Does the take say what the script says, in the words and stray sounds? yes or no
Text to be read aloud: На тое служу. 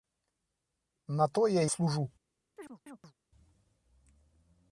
no